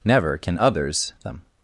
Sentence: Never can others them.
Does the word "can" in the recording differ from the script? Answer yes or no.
no